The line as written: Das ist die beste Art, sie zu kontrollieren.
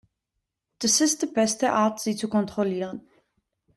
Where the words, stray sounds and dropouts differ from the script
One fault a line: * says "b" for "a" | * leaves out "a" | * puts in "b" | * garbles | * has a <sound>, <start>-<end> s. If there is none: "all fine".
all fine